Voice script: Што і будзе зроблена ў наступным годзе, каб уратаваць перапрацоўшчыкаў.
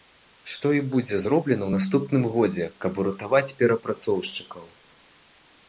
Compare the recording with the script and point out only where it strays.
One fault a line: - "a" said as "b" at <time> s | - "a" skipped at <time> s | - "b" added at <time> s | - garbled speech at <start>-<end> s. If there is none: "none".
none